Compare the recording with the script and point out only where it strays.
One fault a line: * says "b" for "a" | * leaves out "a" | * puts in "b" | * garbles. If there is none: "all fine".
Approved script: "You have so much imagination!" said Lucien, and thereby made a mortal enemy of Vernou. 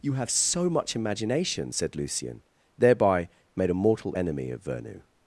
* leaves out "and"